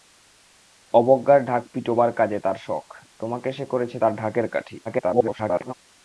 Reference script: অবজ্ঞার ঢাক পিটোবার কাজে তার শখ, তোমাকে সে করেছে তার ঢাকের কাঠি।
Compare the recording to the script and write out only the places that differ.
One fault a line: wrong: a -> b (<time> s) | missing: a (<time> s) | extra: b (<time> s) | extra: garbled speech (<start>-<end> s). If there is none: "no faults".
extra: garbled speech (4.8-5.7 s)